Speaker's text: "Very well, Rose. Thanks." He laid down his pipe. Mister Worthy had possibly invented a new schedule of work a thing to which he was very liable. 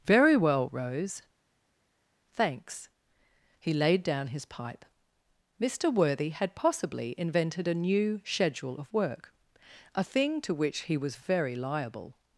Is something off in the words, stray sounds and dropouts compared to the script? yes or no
no